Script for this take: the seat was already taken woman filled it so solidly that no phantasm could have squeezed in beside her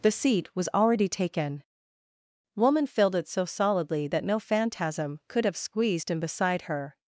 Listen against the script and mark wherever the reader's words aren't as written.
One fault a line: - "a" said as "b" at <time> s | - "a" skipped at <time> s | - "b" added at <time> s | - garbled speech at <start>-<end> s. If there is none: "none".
none